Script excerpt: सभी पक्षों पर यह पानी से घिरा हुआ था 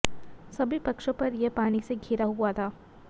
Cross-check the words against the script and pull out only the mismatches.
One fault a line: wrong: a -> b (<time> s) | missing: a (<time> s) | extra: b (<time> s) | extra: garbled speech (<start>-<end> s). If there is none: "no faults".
no faults